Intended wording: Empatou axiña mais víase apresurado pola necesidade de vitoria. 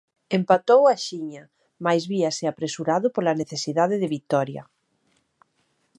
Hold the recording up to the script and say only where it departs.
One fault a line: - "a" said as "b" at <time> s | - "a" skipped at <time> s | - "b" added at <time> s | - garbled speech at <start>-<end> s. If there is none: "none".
none